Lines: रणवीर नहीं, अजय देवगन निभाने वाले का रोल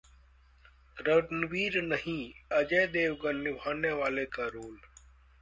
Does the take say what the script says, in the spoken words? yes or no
yes